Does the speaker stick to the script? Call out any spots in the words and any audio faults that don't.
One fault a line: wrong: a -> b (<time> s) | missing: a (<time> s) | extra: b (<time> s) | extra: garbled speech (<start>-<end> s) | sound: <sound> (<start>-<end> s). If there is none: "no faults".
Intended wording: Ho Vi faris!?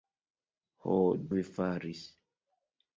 no faults